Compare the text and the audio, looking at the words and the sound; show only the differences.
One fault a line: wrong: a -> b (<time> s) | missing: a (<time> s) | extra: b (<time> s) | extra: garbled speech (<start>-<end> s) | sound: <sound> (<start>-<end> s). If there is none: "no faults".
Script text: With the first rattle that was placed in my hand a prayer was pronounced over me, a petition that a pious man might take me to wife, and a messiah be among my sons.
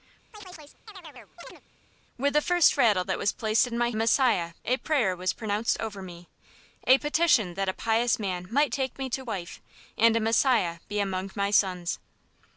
sound: chirp (0.3-1.6 s)
wrong: hand -> messiah (3.9 s)